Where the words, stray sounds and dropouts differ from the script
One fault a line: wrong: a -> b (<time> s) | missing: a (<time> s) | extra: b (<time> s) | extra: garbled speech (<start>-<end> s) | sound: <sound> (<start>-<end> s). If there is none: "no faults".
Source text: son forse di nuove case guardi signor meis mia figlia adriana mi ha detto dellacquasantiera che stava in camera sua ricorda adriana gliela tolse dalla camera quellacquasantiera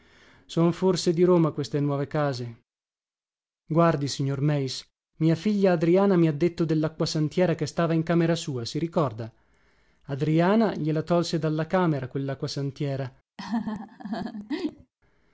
extra: roma queste (1.2 s)
extra: si (8.7 s)
sound: laugh (13.4-14.9 s)